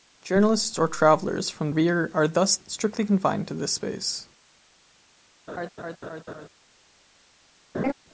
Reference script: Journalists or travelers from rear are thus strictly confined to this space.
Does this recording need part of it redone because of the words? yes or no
no